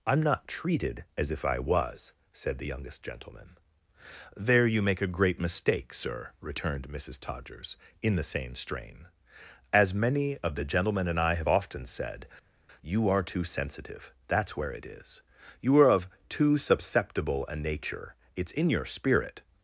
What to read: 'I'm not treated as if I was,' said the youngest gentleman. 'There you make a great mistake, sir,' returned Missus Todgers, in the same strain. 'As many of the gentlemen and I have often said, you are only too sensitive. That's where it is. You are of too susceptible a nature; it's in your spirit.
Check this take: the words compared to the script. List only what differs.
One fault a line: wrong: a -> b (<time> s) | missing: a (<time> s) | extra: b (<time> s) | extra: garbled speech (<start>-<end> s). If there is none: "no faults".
missing: only (13.2 s)